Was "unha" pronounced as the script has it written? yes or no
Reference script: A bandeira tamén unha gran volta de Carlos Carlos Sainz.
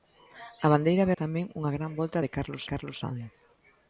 yes